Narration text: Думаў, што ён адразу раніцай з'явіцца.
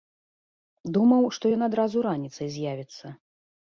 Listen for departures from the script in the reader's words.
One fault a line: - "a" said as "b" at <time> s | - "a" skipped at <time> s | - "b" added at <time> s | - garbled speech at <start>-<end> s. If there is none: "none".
none